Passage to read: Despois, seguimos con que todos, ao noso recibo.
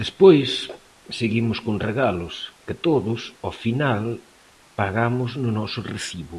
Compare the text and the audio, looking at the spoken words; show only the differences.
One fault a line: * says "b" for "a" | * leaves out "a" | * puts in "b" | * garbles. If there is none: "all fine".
* puts in "regalos"
* puts in "final pagamos no"